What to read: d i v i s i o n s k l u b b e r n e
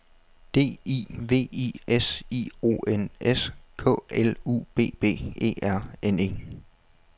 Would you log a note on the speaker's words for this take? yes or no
no